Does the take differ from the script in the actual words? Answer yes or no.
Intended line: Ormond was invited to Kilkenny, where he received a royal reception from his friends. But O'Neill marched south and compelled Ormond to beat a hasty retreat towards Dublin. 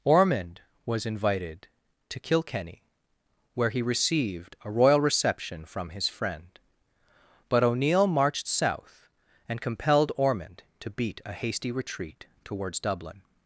yes